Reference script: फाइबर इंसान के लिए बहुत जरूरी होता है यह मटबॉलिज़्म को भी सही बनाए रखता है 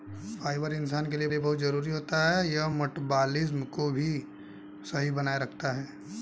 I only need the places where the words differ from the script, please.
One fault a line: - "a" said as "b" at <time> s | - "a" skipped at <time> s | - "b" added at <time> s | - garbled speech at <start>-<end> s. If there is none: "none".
- "लिए" added at 1.3 s